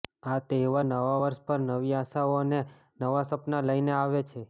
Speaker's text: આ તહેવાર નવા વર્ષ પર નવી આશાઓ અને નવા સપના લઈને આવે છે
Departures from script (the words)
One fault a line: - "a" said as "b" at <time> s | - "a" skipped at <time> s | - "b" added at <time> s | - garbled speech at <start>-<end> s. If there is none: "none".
none